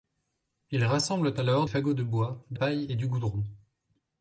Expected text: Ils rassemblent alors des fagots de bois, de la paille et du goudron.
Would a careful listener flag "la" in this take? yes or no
yes